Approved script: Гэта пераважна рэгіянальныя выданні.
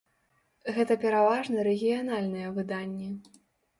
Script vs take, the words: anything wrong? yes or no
no